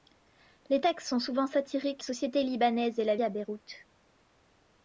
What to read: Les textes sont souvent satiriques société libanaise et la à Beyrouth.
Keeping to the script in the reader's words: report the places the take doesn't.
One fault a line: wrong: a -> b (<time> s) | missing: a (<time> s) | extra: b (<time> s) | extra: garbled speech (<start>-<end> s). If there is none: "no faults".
no faults